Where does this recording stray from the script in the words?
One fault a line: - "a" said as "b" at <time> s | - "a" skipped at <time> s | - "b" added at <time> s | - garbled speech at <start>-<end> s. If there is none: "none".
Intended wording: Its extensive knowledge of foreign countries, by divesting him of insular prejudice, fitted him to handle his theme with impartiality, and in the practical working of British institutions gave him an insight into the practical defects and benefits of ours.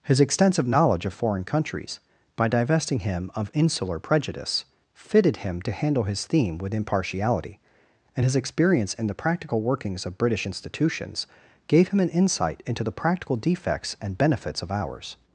- "Its" said as "His" at 0.0 s
- "his experience" added at 8.2 s
- "working" said as "workings" at 9.6 s